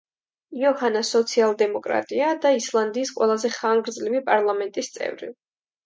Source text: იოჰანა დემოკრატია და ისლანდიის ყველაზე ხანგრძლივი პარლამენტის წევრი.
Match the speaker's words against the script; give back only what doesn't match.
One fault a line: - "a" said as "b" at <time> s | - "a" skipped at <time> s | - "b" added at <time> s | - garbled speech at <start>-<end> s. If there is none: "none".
- "სოციალ" added at 1.1 s